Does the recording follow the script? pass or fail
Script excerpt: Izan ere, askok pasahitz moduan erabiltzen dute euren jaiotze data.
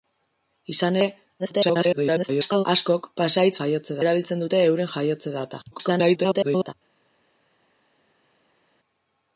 fail